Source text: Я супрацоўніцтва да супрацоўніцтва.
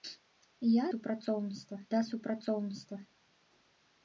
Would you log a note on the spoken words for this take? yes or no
no